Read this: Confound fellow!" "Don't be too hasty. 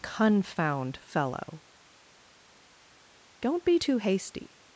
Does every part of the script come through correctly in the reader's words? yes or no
yes